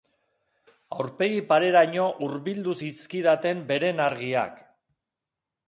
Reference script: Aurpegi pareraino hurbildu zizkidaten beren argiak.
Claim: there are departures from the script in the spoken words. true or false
false